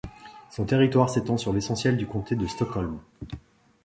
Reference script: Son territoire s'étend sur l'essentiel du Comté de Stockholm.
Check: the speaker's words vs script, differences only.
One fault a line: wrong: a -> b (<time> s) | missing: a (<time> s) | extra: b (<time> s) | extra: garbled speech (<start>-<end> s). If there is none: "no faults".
no faults